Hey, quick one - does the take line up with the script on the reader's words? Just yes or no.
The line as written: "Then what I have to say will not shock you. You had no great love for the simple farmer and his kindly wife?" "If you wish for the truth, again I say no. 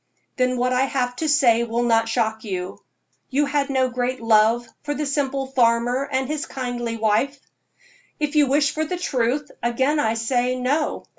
yes